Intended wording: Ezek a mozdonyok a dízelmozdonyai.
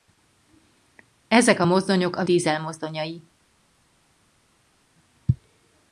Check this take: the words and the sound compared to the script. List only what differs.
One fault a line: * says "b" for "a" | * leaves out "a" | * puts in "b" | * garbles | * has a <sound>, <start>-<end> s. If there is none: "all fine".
all fine